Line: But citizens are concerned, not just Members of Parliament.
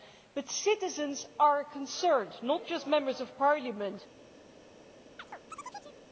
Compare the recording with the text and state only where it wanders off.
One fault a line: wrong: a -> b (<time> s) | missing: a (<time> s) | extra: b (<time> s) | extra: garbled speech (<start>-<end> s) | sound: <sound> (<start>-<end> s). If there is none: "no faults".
sound: chirp (5.2-6.0 s)